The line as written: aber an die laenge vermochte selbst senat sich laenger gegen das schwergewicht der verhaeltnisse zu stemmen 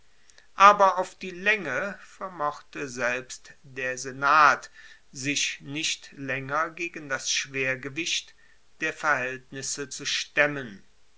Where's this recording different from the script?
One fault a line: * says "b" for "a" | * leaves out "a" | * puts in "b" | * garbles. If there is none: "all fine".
* says "auf" for "an"
* puts in "der"
* puts in "nicht"